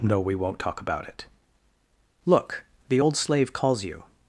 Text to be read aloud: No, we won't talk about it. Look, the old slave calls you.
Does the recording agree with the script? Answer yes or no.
yes